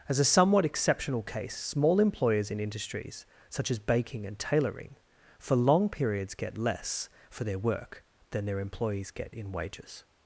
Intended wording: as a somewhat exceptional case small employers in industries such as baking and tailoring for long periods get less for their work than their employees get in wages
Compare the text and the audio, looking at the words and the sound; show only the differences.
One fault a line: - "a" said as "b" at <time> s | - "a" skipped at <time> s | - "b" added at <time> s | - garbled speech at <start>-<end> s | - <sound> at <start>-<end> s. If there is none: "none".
none